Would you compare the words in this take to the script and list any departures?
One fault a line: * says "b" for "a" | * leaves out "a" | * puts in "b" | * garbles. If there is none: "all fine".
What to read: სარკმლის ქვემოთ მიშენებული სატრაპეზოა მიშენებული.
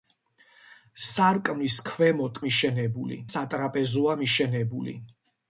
all fine